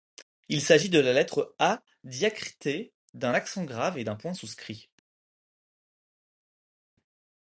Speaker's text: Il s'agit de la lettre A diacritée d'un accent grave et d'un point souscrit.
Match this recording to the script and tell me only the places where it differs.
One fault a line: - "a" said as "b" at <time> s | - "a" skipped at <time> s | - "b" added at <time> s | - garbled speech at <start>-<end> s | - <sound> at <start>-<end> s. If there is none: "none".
none